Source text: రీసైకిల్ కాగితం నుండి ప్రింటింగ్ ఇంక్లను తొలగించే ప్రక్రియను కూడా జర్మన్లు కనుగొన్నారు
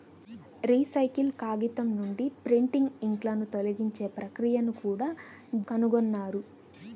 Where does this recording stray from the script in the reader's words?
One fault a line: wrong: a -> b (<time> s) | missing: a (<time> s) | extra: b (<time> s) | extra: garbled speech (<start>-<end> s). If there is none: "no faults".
missing: జర్మన్లు (5.1 s)